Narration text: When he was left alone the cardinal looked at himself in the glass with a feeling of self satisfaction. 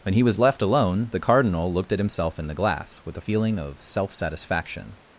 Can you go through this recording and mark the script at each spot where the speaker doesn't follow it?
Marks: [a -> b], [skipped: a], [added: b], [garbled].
When he was left alone the cardinal looked at himself in the glass with a feeling of self satisfaction.